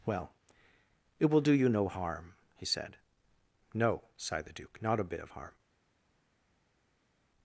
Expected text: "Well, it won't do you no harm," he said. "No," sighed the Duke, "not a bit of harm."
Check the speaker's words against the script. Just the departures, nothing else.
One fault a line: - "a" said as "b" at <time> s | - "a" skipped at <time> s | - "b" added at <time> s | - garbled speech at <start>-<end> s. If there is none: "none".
- "won't" said as "will" at 1.2 s